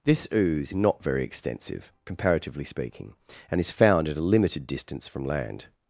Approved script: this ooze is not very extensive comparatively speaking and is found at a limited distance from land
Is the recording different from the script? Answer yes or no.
yes